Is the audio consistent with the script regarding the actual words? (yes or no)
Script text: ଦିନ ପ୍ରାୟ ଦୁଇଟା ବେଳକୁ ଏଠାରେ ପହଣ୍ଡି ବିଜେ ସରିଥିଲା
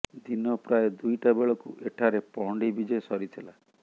yes